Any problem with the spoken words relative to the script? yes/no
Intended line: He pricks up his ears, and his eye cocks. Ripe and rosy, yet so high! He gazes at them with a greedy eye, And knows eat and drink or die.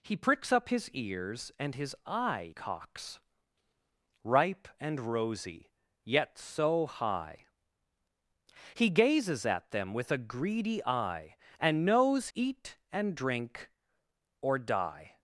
no